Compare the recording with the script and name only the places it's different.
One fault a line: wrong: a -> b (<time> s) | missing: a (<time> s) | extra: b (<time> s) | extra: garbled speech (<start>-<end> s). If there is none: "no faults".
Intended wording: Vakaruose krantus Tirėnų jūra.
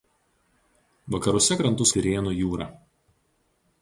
no faults